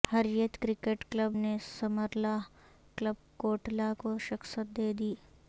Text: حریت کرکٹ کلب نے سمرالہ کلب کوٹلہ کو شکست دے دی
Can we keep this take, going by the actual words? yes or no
yes